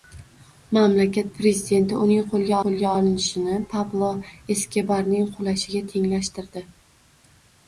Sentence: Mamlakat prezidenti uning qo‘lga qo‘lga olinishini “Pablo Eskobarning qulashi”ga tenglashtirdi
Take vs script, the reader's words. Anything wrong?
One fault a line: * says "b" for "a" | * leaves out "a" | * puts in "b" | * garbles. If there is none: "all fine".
all fine